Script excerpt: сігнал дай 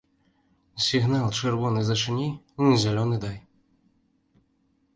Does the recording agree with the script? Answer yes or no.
no